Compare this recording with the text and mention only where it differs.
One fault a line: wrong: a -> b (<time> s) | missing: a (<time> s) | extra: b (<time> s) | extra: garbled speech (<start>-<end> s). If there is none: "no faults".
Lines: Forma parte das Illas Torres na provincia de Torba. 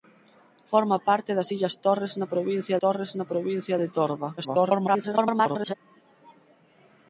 extra: Torres na provincia (2.8 s)
extra: garbled speech (4.4-5.7 s)